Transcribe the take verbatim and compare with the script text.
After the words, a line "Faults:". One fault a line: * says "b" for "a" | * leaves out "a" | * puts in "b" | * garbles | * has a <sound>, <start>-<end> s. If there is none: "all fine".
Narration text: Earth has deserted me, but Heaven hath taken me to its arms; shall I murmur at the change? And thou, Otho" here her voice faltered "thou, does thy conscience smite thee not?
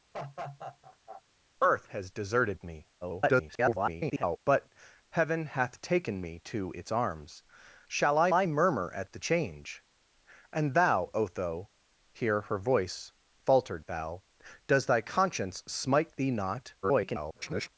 Earth has deserted me, [garbled] but Heaven hath taken me to its arms; shall I I murmur at the change? And thou, Otho" here her voice faltered "thou, does thy conscience smite thee not? [garbled]
Faults:
* has a laugh, 0.1-1.2 s
* garbles
* puts in "I"
* garbles